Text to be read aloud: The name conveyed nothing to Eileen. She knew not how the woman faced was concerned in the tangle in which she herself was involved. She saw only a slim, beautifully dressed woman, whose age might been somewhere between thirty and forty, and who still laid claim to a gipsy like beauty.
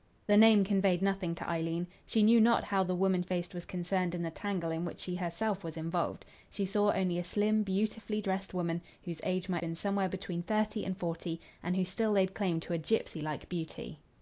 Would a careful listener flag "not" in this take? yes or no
no